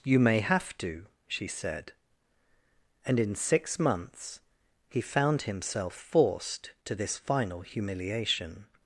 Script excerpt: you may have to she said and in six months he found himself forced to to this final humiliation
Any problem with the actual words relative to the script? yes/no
yes